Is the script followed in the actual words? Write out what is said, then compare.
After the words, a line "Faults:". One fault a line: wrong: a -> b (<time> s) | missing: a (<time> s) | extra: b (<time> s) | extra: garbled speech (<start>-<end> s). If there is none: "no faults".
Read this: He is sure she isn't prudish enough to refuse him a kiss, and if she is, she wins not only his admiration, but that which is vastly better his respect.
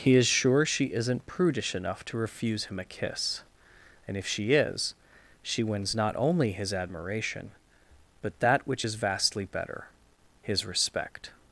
He is sure she isn't prudish enough to refuse him a kiss, and if she is, she wins not only his admiration, but that which is vastly better his respect.
Faults:
no faults